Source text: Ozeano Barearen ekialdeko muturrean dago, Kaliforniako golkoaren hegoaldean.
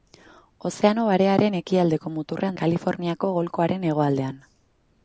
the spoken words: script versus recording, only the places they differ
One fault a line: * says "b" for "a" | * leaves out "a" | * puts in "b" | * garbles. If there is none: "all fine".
* leaves out "dago"